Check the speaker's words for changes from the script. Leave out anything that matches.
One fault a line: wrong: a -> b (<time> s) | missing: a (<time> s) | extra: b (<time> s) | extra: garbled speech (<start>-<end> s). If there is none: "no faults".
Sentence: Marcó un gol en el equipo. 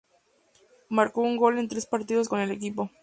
extra: tres partidos con (1.7 s)